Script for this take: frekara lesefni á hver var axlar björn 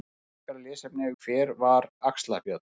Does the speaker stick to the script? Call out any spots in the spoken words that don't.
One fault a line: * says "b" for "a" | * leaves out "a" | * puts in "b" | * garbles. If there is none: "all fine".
all fine